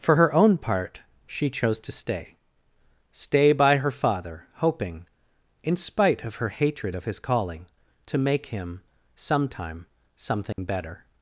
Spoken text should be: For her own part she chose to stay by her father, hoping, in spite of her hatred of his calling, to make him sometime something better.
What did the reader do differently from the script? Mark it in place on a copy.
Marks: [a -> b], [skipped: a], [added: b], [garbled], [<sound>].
For her own part she chose to stay [added: stay] by her father, hoping, in spite of her hatred of his calling, to make him sometime something [dropout] better.